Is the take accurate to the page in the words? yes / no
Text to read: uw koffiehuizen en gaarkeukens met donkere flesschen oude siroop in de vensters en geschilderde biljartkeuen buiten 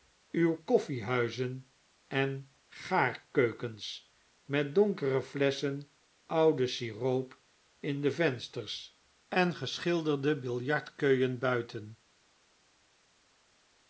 yes